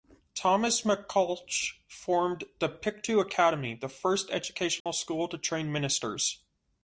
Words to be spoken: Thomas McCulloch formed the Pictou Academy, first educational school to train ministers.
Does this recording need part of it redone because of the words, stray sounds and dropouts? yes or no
yes